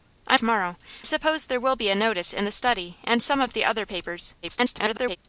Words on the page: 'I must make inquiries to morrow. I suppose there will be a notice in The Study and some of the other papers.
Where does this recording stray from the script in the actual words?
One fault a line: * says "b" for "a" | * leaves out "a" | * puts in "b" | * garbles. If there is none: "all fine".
* leaves out "must make inquiries"
* leaves out "I"
* garbles